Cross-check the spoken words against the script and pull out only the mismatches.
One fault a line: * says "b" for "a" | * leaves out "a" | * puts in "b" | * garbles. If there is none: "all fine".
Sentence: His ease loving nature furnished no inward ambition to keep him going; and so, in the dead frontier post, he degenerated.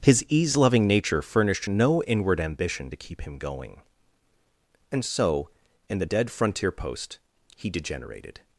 all fine